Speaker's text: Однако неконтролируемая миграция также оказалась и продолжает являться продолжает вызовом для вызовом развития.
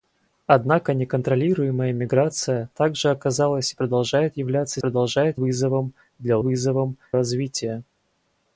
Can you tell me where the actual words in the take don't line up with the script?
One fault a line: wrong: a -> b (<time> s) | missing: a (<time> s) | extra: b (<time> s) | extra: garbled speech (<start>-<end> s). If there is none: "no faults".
no faults